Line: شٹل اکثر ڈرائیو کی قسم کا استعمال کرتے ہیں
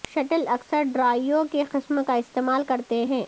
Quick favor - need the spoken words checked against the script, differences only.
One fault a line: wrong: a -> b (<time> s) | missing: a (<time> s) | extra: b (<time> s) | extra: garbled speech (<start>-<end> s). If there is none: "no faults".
no faults